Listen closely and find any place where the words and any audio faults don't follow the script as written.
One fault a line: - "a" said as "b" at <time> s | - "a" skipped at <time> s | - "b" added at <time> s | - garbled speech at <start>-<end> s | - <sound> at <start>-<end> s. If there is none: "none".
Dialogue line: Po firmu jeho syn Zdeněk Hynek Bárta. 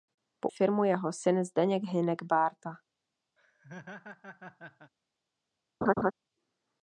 - laugh at 3.4-4.9 s
- laugh at 5.8-6.1 s